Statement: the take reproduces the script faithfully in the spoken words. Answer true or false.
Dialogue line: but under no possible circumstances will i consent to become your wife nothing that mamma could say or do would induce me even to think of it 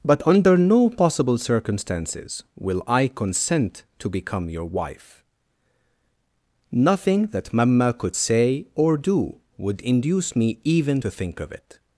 true